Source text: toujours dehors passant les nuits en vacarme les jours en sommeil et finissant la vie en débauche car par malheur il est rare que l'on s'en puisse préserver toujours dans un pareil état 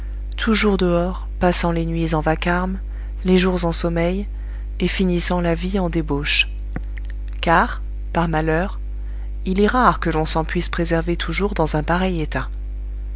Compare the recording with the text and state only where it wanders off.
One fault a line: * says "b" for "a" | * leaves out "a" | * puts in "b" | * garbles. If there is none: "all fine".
all fine